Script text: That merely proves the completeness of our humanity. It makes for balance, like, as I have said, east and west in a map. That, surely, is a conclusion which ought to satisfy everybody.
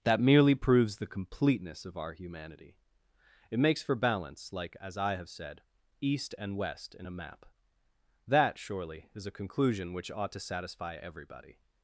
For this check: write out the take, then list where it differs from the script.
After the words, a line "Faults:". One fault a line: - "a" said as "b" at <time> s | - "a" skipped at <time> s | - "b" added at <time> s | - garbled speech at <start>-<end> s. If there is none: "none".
That merely proves the completeness of our humanity. It makes for balance, like, as I have said, east and west in a map. That, surely, is a conclusion which ought to satisfy everybody.
Faults:
none